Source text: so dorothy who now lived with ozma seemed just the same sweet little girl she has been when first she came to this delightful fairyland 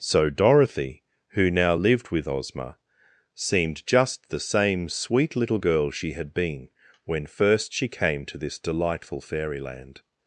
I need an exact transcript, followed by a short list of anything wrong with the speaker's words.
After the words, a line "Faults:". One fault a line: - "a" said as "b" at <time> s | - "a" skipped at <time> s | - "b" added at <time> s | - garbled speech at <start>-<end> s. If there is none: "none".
so dorothy who now lived with ozma seemed just the same sweet little girl she had been when first she came to this delightful fairyland
Faults:
- "has" said as "had" at 6.1 s